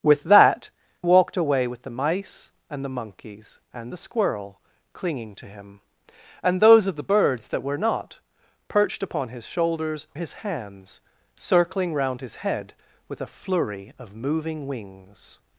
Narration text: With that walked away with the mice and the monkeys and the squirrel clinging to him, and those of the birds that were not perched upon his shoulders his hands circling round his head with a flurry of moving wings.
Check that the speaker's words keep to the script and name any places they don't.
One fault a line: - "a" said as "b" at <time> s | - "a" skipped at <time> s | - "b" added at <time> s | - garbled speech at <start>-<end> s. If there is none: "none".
none